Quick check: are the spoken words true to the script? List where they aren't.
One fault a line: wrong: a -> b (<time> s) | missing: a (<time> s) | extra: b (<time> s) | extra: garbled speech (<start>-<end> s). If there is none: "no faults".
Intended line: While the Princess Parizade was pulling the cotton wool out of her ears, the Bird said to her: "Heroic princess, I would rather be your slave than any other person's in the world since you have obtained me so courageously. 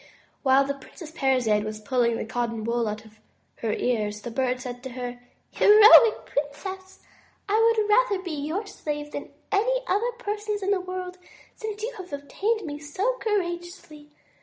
no faults